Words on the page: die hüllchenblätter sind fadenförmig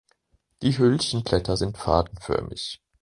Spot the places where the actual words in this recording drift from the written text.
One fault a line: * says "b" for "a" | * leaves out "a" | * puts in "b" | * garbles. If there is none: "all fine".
all fine